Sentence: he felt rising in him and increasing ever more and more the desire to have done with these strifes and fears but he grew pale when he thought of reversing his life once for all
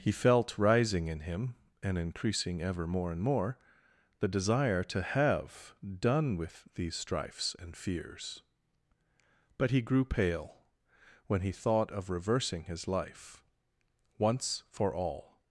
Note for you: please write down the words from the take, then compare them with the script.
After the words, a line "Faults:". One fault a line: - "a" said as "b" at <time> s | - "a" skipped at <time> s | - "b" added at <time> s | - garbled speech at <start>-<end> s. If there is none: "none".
he felt rising in him and increasing ever more and more the desire to have done with these strifes and fears but he grew pale when he thought of reversing his life once for all
Faults:
none